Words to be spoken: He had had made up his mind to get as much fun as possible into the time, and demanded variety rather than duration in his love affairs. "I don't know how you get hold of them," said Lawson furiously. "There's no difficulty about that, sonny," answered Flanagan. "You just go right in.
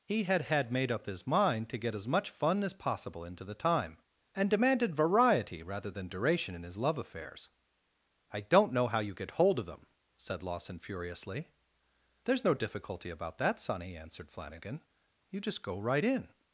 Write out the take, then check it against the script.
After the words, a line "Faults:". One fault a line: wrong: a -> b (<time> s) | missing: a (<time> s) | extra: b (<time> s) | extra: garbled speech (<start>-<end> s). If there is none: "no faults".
He had had made up his mind to get as much fun as possible into the time, and demanded variety rather than duration in his love affairs. "I don't know how you get hold of them," said Lawson furiously. "There's no difficulty about that, sonny," answered Flanagan. "You just go right in.
Faults:
no faults